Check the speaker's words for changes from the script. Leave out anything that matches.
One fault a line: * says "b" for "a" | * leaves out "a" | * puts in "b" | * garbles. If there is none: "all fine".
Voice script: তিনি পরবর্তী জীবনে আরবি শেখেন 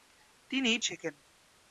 * leaves out "পরবর্তী জীবনে আরবি"